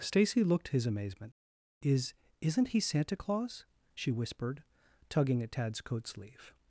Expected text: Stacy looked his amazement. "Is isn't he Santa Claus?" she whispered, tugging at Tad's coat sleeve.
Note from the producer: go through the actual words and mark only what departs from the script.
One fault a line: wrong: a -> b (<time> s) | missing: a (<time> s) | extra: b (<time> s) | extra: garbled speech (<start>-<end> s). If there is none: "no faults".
no faults